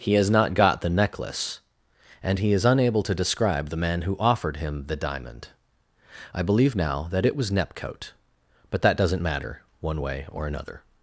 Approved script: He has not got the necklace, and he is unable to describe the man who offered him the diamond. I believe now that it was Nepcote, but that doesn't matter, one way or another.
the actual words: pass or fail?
pass